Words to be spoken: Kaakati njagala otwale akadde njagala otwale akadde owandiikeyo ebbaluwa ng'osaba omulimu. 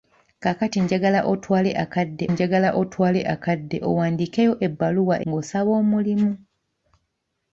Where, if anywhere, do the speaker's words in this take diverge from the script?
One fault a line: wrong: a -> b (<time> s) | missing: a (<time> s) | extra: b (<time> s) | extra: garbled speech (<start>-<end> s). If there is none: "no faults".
no faults